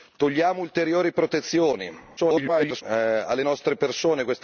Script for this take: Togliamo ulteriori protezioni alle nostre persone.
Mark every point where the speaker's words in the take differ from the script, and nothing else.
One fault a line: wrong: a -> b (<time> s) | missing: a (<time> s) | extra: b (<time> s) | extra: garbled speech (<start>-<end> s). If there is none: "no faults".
extra: garbled speech (2.2-2.8 s)